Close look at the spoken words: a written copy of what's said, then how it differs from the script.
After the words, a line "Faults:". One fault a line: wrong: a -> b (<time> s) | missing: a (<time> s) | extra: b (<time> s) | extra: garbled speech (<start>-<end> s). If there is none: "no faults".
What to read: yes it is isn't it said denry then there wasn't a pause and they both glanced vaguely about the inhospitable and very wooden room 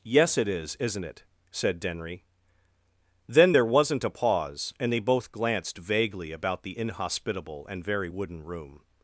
yes it is isn't it said denry then there wasn't a pause and they both glanced vaguely about the inhospitable and very wooden room
Faults:
no faults